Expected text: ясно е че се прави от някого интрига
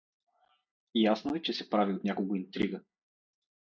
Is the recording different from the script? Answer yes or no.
no